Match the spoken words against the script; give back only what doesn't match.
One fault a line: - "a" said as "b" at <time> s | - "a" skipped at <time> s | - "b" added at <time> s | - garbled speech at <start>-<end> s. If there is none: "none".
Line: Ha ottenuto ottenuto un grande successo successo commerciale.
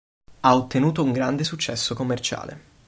- "ottenuto" skipped at 1.0 s
- "successo" skipped at 1.9 s